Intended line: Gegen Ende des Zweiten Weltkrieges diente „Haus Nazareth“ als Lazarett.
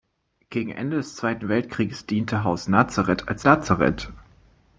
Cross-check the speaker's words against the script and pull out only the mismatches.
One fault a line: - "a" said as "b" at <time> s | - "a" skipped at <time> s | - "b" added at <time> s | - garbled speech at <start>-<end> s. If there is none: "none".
none